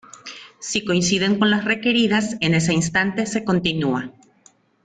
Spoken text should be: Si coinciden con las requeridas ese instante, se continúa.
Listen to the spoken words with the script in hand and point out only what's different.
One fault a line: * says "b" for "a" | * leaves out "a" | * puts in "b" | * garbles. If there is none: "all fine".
* puts in "en"